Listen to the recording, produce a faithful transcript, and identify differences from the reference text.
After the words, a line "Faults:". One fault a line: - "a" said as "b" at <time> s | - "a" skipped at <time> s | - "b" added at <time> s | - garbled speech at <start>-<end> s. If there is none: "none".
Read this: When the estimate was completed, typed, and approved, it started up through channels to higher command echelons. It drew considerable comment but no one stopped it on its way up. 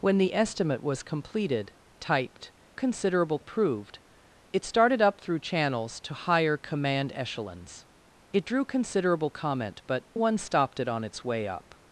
When the estimate was completed, typed, considerable approved, it started up through channels to higher command echelons. It drew considerable comment but one stopped it on its way up.
Faults:
- "and" said as "considerable" at 2.7 s
- "no" skipped at 10.1 s